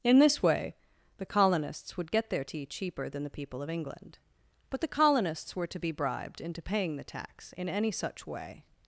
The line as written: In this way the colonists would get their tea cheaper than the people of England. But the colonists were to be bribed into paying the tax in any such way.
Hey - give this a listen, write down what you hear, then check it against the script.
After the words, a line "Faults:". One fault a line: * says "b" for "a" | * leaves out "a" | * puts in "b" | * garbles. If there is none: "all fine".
In this way the colonists would get their tea cheaper than the people of England. But the colonists were to be bribed into paying the tax in any such way.
Faults:
all fine